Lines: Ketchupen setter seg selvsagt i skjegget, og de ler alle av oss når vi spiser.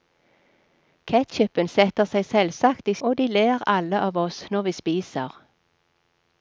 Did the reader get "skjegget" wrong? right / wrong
wrong